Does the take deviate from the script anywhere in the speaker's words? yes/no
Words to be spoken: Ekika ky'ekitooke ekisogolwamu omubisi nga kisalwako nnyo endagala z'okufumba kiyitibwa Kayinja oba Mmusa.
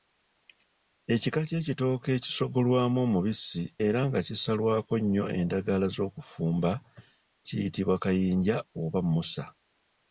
yes